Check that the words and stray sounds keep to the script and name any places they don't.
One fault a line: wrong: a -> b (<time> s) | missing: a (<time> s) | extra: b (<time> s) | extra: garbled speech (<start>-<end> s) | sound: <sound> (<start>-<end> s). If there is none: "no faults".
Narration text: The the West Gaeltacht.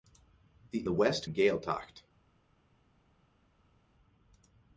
no faults